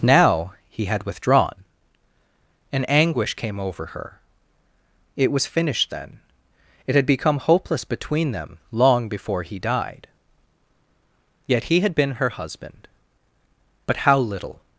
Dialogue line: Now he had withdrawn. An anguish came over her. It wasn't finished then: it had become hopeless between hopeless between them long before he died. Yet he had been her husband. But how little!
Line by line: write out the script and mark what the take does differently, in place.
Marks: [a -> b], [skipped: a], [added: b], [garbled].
Now he had withdrawn. An anguish came over her. It [wasn't -> was] finished then: it had become hopeless between [skipped: hopeless between] them long before he died. Yet he had been her husband. But how little!